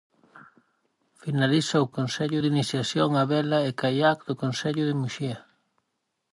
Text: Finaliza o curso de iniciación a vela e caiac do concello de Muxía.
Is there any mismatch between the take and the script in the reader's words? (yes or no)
yes